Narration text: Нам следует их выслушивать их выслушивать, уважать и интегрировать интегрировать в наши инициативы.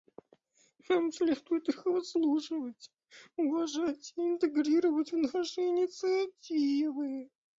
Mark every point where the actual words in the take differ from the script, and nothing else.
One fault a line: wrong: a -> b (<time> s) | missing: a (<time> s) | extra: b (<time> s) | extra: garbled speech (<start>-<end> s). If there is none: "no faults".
missing: их выслушивать (2.9 s)
missing: интегрировать (5.1 s)